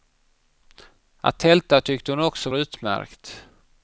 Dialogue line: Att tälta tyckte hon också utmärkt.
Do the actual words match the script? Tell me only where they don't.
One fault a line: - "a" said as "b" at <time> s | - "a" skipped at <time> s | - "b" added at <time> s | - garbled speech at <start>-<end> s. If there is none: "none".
none